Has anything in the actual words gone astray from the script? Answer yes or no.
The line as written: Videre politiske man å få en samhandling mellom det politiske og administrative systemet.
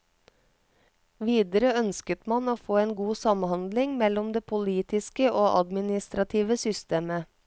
yes